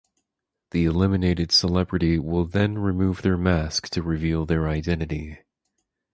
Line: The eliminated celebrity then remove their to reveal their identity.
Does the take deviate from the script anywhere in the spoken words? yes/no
yes